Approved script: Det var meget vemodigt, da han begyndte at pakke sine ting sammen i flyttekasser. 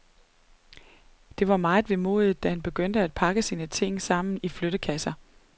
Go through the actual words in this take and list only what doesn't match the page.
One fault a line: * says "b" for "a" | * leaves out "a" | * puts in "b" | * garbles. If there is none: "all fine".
all fine